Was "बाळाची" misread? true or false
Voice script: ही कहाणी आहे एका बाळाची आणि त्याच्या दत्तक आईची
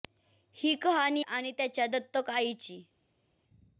true